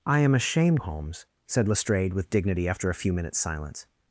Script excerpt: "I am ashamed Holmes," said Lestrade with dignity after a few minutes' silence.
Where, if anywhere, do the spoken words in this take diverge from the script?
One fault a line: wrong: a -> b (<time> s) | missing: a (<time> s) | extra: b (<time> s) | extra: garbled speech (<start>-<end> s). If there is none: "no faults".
no faults